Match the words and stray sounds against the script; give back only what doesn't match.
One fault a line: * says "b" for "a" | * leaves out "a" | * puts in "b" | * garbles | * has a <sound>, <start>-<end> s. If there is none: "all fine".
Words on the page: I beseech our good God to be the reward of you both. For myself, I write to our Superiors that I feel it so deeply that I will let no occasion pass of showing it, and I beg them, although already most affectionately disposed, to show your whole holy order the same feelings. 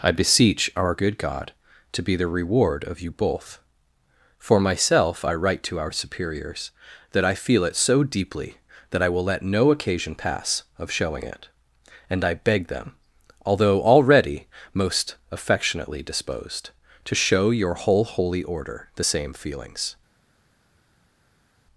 all fine